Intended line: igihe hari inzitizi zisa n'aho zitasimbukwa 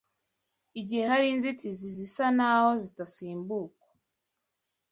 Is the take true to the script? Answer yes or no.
yes